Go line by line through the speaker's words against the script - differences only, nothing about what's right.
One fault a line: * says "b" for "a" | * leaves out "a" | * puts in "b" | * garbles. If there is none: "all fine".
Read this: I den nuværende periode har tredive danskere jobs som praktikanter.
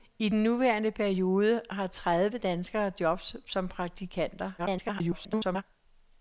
* garbles